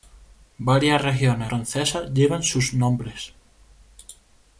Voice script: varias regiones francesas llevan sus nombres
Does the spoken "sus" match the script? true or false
true